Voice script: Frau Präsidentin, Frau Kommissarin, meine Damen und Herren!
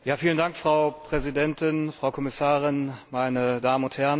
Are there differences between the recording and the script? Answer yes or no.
no